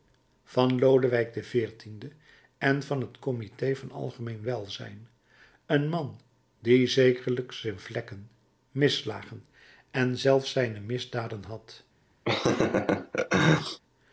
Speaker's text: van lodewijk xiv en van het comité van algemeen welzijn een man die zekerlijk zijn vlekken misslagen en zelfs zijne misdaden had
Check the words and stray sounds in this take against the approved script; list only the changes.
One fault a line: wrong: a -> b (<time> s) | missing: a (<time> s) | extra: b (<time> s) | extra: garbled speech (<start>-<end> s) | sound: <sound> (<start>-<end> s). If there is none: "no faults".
sound: laugh (12.3-13.8 s)